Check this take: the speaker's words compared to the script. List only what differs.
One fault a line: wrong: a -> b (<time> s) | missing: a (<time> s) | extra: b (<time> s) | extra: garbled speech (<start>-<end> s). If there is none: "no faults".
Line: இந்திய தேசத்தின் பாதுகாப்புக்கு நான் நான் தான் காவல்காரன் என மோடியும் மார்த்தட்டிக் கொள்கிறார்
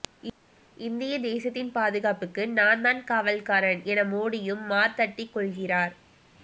missing: நான் (2.8 s)